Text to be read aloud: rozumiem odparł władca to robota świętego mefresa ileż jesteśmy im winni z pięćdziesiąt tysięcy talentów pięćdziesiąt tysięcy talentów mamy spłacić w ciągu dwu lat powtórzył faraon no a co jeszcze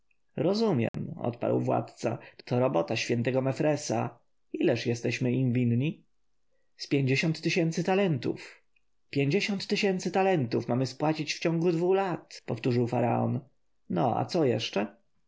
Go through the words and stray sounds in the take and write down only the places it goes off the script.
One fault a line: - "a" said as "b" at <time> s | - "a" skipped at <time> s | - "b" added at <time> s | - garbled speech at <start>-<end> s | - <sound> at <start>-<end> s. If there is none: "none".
- dropout at 0.9-0.9 s